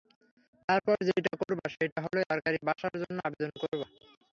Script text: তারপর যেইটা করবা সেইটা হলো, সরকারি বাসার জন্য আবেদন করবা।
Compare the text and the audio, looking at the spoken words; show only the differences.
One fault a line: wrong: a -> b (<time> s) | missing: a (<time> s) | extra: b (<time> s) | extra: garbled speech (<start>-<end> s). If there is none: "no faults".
no faults